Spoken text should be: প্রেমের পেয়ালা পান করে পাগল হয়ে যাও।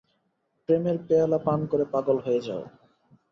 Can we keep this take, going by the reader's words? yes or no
yes